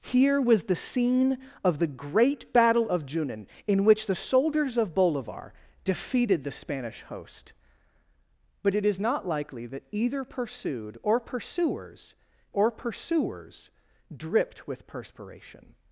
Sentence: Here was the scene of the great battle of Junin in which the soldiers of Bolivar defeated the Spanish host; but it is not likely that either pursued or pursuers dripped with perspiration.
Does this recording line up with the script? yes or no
no